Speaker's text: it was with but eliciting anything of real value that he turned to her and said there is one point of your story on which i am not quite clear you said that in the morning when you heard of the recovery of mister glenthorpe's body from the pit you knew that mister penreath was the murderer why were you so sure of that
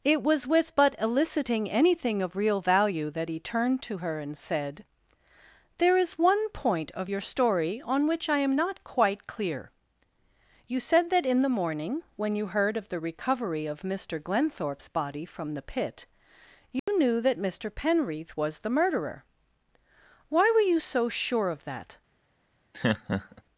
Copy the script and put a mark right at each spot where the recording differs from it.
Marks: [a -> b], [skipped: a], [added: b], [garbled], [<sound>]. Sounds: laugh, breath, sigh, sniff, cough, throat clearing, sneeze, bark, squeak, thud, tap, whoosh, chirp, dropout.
it was with but eliciting anything of real value that he turned to her and said there is one point of your story on which i am not quite clear you said that in the morning when you heard of the recovery of mister glenthorpe's body from the pit you [dropout] knew that mister penreath was the murderer why were you so sure of that [laugh]